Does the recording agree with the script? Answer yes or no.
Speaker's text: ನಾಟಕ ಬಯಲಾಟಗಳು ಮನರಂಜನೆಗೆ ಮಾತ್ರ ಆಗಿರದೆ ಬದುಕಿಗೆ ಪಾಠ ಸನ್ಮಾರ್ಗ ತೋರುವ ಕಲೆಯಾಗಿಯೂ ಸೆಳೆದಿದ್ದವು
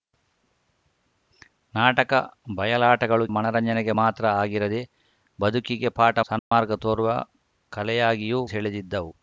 yes